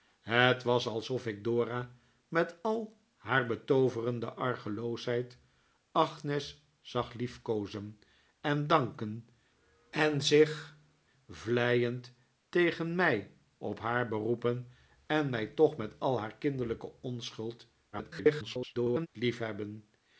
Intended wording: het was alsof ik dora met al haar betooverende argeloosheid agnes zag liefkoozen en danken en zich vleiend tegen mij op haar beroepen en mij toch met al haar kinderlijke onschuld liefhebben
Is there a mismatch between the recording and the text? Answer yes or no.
yes